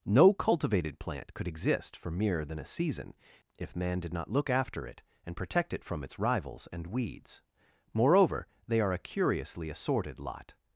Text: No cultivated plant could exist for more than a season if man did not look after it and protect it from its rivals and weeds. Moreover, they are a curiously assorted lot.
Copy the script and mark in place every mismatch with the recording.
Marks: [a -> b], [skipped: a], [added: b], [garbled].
No cultivated plant could exist for [more -> mere] than a season if man did not look after it and protect it from its rivals and weeds. Moreover, they are a curiously assorted lot.